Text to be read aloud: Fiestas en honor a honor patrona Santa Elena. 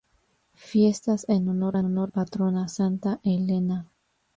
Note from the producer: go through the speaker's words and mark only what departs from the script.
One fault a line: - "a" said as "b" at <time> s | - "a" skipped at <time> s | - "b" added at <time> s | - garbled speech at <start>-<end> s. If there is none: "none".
none